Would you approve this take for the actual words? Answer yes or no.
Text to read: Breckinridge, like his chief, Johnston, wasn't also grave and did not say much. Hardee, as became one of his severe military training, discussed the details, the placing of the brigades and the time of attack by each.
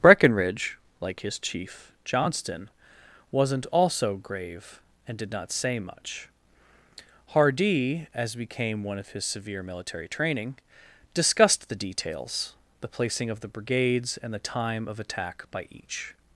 yes